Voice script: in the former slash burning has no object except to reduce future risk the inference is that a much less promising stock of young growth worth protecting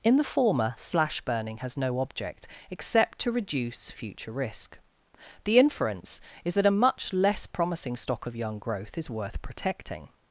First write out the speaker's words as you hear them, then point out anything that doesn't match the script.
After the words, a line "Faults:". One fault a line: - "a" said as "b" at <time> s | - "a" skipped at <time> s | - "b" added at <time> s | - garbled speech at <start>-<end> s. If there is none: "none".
in the former slash burning has no object except to reduce future risk the inference is that a much less promising stock of young growth is worth protecting
Faults:
- "is" added at 9.0 s